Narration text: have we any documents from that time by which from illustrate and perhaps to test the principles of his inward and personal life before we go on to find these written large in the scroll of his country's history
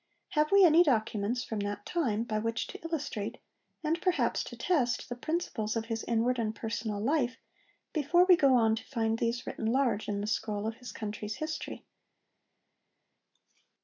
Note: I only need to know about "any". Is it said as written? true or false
true